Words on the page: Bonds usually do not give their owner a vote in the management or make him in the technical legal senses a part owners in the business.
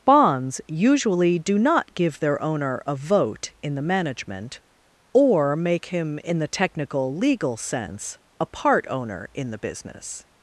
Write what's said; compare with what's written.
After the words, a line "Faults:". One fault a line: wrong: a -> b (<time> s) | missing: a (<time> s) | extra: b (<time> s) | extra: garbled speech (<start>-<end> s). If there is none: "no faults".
Bonds usually do not give their owner a vote in the management or make him in the technical legal sense a part owner in the business.
Faults:
wrong: senses -> sense (7.6 s)
wrong: owners -> owner (8.9 s)